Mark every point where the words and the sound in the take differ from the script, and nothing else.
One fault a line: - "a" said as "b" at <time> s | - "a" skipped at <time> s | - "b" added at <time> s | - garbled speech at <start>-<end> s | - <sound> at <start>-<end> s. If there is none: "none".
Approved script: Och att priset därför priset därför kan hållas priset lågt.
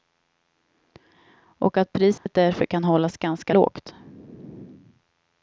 - dropout at 2.2-2.3 s
- "priset därför" skipped at 2.6 s
- "priset" said as "ganska" at 3.2 s